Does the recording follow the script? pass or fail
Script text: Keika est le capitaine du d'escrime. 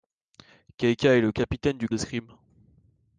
pass